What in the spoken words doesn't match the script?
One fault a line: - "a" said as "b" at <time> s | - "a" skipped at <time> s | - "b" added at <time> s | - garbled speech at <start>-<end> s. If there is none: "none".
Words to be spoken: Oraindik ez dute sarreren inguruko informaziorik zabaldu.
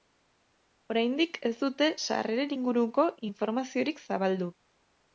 none